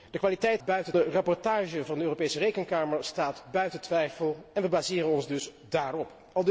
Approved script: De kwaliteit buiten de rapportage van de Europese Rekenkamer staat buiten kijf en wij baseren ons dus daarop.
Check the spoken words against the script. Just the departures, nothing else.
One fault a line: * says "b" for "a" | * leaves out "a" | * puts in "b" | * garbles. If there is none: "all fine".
all fine